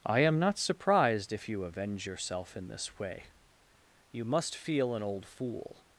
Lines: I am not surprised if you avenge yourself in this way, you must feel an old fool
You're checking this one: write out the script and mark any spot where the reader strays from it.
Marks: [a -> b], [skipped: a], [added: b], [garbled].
I am not surprised if you avenge yourself in this way, you must feel an old fool